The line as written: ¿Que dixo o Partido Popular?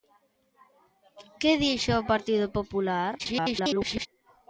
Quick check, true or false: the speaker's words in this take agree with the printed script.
false